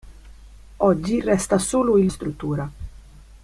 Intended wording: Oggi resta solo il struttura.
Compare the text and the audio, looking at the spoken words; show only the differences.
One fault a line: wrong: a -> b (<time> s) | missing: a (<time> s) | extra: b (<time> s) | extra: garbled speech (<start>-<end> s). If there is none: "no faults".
no faults